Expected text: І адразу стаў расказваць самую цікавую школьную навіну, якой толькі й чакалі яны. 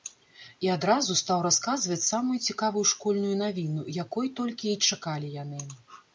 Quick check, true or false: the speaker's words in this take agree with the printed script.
true